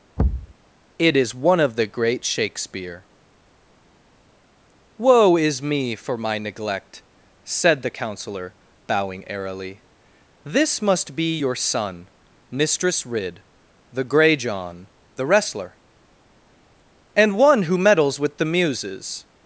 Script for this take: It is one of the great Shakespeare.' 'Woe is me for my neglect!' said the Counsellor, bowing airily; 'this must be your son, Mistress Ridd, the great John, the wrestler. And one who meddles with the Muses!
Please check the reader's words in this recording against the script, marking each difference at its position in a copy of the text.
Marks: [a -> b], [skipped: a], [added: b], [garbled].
It is one of the great Shakespeare.' 'Woe is me for my neglect!' said the Counsellor, bowing airily; 'this must be your son, Mistress Ridd, the [great -> grey] John, the wrestler. And one who meddles with the Muses!